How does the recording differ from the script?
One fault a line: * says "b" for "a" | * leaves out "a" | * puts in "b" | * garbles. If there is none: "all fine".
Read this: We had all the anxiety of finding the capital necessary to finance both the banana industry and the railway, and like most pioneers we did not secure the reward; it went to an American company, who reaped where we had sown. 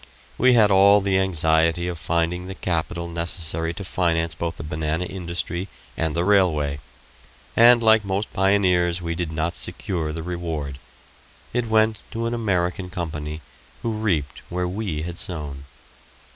all fine